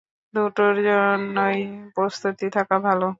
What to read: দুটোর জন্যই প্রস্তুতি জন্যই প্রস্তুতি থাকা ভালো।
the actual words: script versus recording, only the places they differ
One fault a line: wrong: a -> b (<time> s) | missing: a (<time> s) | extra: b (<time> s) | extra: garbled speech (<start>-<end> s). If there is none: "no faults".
missing: জন্যই প্রস্তুতি (2.5 s)